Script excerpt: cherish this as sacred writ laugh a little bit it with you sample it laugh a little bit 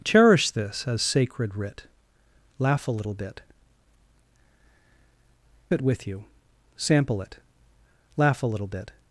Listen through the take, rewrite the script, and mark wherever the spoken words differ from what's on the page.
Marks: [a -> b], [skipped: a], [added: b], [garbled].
cherish this as sacred writ laugh a little bit it with you sample it laugh a little bit